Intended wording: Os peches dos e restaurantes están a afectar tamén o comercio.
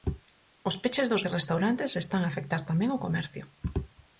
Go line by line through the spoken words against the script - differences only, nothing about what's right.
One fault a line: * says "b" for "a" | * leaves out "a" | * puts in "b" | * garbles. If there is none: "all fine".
all fine